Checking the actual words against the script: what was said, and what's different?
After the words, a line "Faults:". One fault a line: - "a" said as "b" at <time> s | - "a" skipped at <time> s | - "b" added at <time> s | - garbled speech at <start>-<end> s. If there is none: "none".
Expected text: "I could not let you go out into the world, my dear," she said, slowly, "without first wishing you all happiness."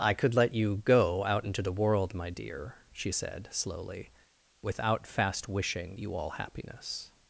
"I could let you go out into the world, my dear," she said, slowly, "without fast wishing you all happiness."
Faults:
- "not" skipped at 0.3 s
- "first" said as "fast" at 5.1 s